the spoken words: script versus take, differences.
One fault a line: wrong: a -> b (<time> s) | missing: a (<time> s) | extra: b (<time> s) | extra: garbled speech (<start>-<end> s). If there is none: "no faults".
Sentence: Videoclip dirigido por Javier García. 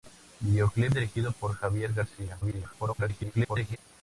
extra: garbled speech (2.4-3.8 s)